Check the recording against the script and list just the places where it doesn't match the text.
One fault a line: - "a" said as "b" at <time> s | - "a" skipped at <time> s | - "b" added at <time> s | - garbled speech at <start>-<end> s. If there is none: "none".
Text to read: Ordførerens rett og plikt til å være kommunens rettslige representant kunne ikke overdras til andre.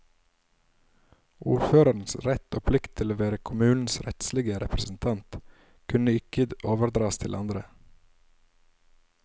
none